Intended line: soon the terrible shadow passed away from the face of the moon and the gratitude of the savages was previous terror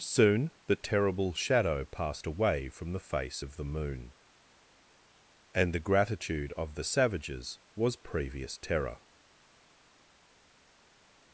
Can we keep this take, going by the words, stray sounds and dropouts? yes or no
yes